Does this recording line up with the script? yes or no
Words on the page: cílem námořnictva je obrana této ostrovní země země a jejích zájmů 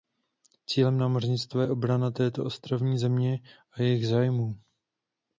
no